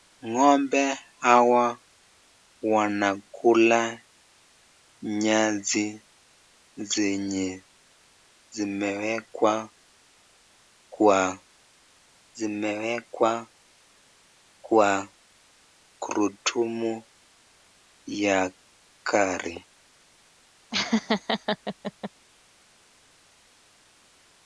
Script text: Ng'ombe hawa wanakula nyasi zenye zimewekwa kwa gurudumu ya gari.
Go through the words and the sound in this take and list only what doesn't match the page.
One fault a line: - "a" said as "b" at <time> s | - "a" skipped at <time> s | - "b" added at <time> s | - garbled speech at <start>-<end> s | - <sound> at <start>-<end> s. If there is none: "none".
- "zimewekwa kwa" added at 12.4 s
- laugh at 20.7-22.1 s